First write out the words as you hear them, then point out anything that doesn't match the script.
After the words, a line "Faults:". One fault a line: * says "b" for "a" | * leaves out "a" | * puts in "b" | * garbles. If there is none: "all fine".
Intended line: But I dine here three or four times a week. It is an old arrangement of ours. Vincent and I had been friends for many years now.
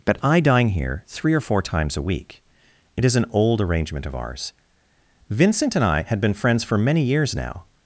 But I dine here three or four times a week. It is an old arrangement of ours. Vincent and I had been friends for many years now.
Faults:
all fine